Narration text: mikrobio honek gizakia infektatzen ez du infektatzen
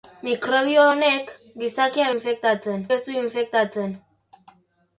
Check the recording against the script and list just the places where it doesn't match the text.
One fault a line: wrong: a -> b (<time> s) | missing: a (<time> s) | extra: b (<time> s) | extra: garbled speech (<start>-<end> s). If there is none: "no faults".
no faults